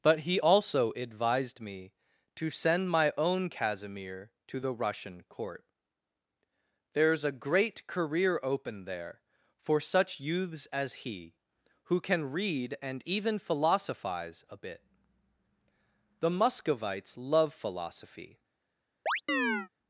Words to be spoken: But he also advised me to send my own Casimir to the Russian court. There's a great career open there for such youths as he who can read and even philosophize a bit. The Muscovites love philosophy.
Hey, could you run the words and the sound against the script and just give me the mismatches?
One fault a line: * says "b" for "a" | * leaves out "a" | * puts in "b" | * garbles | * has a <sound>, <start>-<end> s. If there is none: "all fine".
* has a chirp, 19.1-19.7 s